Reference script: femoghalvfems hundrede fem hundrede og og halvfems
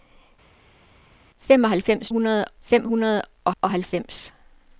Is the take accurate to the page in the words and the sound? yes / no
yes